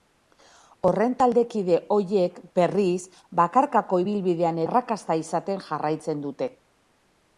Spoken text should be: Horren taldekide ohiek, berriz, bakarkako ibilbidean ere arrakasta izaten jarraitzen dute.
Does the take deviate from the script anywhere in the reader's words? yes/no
yes